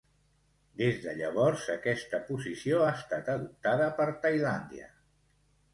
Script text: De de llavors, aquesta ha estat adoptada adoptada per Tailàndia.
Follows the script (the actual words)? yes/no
no